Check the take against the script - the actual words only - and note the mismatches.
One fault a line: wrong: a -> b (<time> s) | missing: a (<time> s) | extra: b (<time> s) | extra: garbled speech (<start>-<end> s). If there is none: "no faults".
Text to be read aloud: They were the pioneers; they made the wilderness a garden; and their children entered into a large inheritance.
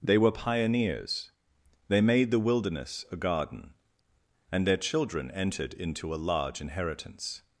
missing: the (0.3 s)